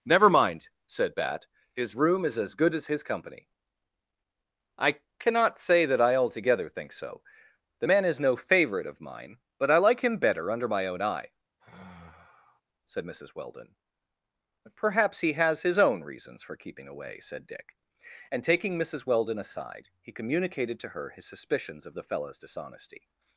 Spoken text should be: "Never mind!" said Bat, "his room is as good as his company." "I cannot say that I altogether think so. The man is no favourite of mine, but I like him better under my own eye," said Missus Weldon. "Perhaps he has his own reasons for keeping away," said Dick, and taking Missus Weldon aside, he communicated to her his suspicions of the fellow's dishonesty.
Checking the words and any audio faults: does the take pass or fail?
fail